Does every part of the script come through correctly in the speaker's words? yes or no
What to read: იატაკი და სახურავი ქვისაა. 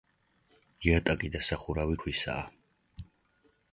yes